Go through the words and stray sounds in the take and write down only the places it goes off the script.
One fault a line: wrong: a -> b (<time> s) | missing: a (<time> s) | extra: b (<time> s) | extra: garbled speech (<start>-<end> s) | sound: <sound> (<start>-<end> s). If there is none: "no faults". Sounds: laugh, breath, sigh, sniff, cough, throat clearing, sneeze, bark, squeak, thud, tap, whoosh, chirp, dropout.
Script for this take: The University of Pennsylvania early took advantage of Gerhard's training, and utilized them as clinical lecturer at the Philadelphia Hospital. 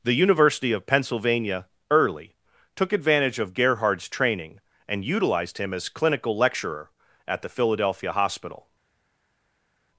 wrong: them -> him (5.6 s)